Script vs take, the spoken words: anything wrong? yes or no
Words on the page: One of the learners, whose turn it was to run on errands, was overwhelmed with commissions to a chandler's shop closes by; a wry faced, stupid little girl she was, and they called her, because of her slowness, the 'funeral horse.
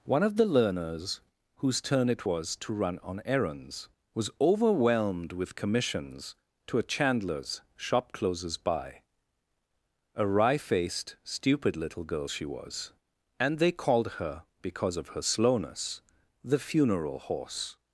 no